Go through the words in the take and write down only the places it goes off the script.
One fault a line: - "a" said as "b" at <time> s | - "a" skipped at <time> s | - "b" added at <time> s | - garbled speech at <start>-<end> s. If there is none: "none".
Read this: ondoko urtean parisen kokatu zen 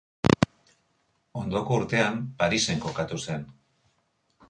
none